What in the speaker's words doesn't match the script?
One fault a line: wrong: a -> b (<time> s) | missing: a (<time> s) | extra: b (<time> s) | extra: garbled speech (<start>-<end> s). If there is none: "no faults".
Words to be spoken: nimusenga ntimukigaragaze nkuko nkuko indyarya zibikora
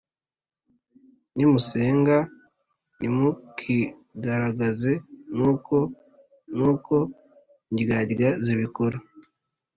no faults